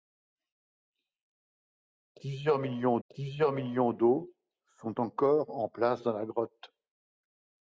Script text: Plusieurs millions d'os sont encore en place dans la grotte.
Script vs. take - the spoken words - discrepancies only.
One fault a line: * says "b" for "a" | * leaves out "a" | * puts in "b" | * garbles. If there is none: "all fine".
* puts in "plusieurs millions"